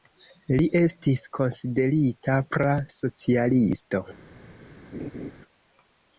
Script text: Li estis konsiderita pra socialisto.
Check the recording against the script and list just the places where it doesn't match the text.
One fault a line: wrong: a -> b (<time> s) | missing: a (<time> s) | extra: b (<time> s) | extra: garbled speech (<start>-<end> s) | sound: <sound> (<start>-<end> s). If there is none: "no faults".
sound: laugh (4.9-5.3 s)